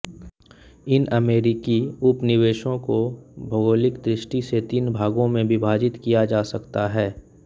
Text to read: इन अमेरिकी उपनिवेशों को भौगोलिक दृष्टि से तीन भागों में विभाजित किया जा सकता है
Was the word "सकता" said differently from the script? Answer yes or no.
no